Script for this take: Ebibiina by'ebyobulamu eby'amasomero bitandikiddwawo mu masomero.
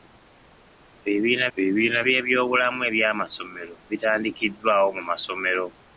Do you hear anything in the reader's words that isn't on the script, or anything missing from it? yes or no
yes